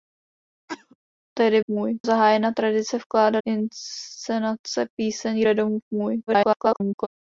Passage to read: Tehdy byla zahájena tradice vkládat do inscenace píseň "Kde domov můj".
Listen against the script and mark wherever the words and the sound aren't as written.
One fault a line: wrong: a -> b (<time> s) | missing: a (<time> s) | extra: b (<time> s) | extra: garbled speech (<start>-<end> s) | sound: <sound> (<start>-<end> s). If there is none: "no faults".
sound: cough (0.7-1.0 s)
wrong: byla -> můj (1.7 s)
missing: do (3.4 s)
extra: garbled speech (6.3-7.1 s)